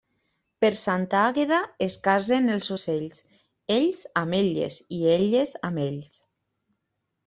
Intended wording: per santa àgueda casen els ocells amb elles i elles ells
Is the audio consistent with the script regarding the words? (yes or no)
no